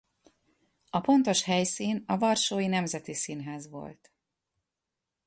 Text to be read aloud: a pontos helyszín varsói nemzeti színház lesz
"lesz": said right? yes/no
no